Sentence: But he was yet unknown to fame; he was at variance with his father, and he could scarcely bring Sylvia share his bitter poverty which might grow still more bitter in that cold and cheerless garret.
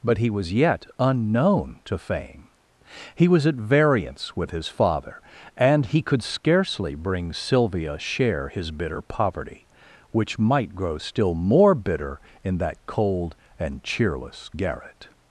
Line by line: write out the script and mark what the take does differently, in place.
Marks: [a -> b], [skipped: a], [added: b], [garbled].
But he was yet unknown to fame; he was at variance with his father, and he could scarcely bring Sylvia share his bitter poverty which might grow still more bitter in that cold and cheerless garret.